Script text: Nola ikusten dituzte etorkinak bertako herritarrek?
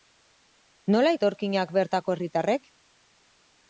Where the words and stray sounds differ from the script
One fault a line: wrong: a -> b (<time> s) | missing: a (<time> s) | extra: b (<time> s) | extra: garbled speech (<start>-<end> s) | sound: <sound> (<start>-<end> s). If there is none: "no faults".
missing: ikusten dituzte (1.1 s)